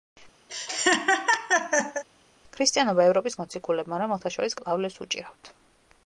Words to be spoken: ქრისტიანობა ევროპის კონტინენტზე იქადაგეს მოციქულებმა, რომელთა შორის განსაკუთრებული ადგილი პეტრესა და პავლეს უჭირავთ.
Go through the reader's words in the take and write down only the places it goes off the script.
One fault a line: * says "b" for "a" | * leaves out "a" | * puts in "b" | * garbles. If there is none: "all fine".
* leaves out "კონტინენტზე იქადაგეს"
* leaves out "განსაკუთრებული ადგილი პეტრესა"